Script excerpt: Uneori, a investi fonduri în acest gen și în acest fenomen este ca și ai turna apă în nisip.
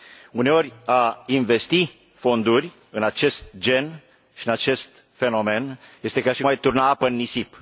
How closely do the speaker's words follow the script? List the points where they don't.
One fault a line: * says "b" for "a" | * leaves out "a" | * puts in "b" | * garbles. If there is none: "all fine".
all fine